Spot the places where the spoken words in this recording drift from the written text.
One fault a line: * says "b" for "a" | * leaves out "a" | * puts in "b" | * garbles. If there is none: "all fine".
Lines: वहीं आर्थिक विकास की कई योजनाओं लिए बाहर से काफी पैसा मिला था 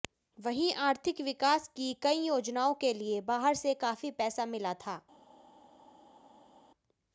* puts in "के"